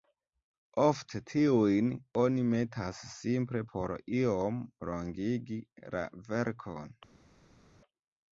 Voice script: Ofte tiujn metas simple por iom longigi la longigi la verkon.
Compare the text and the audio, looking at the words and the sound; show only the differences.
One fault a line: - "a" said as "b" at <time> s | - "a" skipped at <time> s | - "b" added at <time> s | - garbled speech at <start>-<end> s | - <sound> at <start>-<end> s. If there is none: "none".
- "oni" added at 2.2 s
- "longigi la" skipped at 6.1 s